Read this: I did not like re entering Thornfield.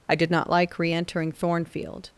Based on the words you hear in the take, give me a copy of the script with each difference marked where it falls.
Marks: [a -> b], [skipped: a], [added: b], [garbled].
I did not like re entering Thornfield.